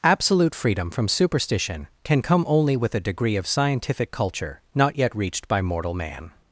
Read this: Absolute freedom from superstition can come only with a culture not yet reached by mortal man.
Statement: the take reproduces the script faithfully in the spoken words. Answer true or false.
false